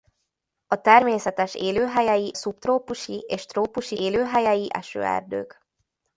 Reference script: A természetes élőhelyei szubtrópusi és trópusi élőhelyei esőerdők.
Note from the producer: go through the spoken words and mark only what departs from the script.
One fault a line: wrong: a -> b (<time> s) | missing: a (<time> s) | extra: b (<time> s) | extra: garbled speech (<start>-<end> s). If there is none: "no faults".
no faults